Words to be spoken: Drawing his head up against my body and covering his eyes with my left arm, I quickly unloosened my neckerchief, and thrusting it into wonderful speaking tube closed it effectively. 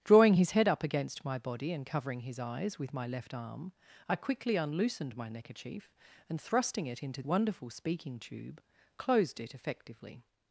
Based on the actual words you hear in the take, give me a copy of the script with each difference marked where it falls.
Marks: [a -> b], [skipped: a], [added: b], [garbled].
Drawing his head up against my body and covering his eyes with my left arm, I quickly unloosened my neckerchief, and thrusting it into wonderful speaking tube closed it effectively.